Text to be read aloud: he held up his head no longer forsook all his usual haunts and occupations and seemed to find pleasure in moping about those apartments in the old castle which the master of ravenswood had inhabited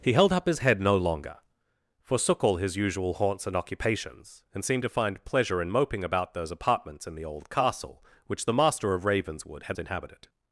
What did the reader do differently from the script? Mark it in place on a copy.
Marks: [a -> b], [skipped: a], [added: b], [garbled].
he held up his head no longer forsook all his usual haunts and occupations and seemed to find pleasure in moping about those apartments in the old castle which the master of ravenswood had inhabited